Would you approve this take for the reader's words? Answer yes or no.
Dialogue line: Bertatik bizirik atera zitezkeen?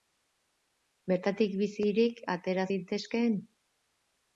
yes